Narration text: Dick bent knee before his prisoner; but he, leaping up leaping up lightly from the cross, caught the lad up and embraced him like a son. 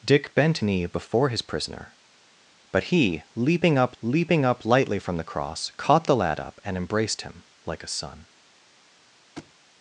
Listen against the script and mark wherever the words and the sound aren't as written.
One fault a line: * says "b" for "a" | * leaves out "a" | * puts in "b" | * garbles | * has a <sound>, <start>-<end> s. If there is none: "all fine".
* has a thud, 9.4-9.5 s